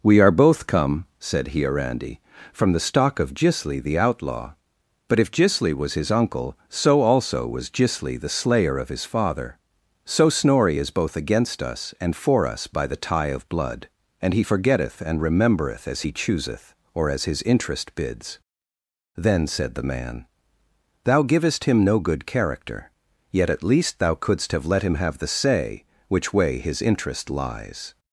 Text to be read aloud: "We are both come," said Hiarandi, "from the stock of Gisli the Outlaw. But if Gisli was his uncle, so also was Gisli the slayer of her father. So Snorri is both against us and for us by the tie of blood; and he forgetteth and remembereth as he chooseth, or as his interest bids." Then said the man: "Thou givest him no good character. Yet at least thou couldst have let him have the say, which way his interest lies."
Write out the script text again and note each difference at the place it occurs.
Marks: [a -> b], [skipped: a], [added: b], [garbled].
"We are both come," said Hiarandi, "from the stock of Gisli the Outlaw. But if Gisli was his uncle, so also was Gisli the slayer of [her -> his] father. So Snorri is both against us and for us by the tie of blood; and he forgetteth and remembereth as he chooseth, or as his interest bids." Then said the man: "Thou givest him no good character. Yet at least thou couldst have let him have the say, which way his interest lies."